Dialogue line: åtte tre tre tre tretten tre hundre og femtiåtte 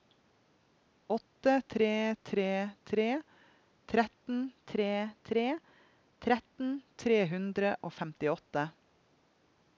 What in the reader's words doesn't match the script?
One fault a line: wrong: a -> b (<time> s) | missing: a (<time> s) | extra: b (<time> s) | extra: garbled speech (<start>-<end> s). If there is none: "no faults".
extra: tre tretten tre (5.3 s)